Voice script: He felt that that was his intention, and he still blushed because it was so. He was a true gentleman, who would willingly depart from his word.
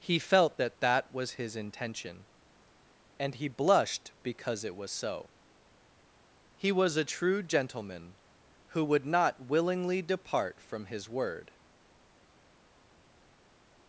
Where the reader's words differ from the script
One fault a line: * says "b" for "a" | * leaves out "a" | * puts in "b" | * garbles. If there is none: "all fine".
* leaves out "still"
* puts in "not"